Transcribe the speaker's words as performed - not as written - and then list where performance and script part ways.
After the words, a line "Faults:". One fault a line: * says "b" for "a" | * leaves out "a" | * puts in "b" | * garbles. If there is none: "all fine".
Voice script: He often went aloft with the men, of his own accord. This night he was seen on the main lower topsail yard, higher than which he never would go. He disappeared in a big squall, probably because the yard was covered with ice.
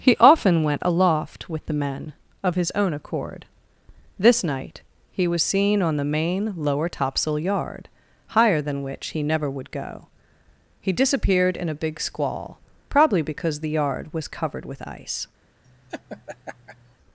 He often went aloft with the men, of his own accord. This night he was seen on the main lower topsail yard, higher than which he never would go. He disappeared in a big squall, probably because the yard was covered with ice.
Faults:
all fine